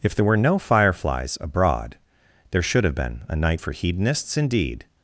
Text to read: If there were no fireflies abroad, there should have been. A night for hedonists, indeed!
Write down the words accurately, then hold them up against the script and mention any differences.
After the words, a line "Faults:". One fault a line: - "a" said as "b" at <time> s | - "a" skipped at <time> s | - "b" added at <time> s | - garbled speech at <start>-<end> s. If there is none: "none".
If there were no fireflies abroad, there should have been. A night for hedonists, indeed!
Faults:
none